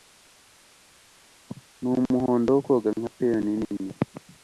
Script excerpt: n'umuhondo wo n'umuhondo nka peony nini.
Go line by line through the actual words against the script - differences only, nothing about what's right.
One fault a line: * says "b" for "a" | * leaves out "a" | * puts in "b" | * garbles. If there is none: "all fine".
* says "koga" for "n'umuhondo"